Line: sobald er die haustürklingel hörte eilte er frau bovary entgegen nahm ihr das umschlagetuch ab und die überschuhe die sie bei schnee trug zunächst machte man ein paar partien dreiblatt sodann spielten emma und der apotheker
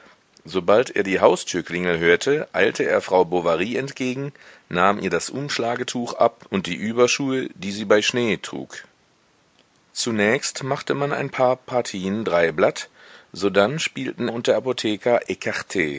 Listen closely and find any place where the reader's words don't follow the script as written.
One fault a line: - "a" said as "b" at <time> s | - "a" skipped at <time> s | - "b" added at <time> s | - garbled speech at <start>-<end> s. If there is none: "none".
- "emma" skipped at 14.3 s